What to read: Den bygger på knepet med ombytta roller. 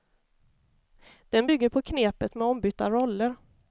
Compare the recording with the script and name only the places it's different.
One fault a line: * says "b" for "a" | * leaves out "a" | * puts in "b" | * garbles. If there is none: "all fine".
all fine